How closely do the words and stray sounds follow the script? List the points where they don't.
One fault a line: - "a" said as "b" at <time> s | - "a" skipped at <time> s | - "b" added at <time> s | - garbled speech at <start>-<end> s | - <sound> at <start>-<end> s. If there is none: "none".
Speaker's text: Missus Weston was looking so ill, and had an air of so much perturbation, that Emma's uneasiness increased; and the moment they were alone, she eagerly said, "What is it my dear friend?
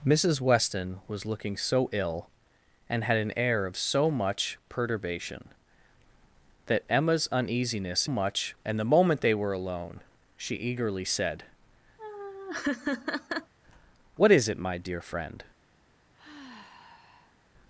- "increased" said as "much" at 8.1 s
- laugh at 12.0-13.5 s
- sigh at 16.1-17.5 s